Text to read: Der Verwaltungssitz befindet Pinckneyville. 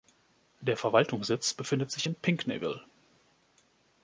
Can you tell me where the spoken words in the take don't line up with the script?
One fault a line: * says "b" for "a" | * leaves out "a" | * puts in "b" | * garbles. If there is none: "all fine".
* puts in "sich in"